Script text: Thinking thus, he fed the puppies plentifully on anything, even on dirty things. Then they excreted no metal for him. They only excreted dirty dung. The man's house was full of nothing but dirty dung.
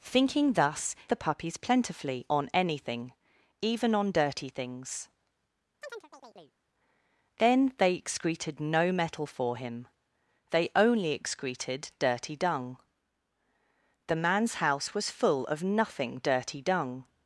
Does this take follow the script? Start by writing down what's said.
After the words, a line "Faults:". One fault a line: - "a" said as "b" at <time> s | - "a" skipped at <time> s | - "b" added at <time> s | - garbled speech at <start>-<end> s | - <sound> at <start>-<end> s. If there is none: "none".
Thinking thus, the puppies plentifully on anything, even on dirty things. Then they excreted no metal for him. They only excreted dirty dung. The man's house was full of nothing dirty dung.
Faults:
- "he fed" skipped at 0.9 s
- chirp at 5.8-6.6 s
- "but" skipped at 16.2 s